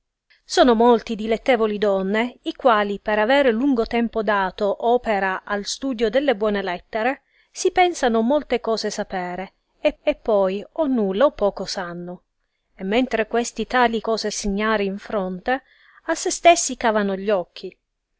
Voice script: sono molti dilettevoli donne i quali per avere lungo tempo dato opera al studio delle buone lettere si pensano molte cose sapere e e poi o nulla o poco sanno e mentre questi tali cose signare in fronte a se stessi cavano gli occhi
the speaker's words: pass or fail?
pass